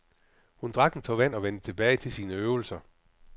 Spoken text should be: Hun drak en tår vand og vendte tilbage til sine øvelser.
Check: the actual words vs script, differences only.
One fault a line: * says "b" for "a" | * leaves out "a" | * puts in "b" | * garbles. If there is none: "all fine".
all fine